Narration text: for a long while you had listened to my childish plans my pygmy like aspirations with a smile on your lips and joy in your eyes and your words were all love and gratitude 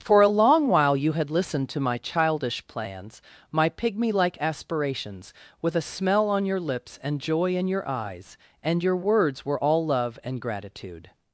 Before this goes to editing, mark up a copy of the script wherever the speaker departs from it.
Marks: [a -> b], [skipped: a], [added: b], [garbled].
for a long while you had listened to my childish plans my pygmy like aspirations with a [smile -> smell] on your lips and joy in your eyes and your words were all love and gratitude